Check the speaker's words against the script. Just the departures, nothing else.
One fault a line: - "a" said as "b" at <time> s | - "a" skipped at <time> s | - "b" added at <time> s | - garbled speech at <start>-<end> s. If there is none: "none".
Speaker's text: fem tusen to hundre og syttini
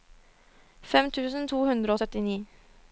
none